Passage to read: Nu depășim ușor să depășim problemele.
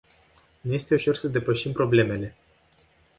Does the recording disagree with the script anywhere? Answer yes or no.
yes